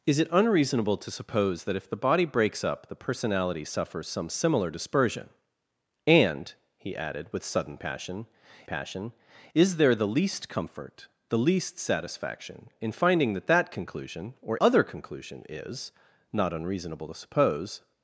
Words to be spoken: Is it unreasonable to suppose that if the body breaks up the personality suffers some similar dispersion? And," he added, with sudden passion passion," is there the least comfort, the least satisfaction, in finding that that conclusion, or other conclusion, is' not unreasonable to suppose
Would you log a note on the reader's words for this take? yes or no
no